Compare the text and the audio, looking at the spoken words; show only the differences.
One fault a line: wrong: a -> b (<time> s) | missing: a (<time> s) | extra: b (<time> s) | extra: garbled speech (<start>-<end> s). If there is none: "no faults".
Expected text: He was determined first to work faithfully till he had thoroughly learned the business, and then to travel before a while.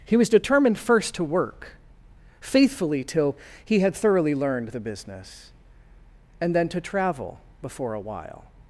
no faults